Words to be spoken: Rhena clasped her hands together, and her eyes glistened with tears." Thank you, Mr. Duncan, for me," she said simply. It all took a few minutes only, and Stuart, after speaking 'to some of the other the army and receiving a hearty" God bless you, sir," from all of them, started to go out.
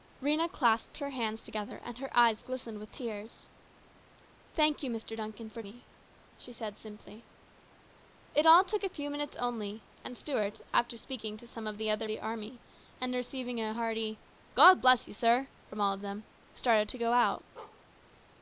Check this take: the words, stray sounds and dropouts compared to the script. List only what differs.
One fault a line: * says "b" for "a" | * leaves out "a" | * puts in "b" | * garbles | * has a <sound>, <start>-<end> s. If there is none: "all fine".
* has a bark, 17.6-17.8 s